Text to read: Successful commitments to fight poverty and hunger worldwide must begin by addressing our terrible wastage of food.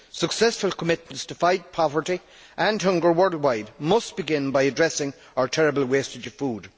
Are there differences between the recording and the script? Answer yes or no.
no